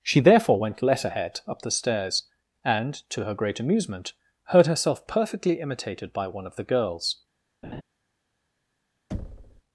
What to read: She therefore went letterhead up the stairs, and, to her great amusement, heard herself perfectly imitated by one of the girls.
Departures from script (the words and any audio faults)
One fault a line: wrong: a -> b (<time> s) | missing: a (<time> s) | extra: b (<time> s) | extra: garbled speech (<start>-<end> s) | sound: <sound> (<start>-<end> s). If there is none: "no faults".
sound: laugh (7.6-7.8 s)
sound: thud (9.1-9.6 s)